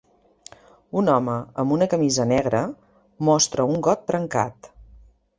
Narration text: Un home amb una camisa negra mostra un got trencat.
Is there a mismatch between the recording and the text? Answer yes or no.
no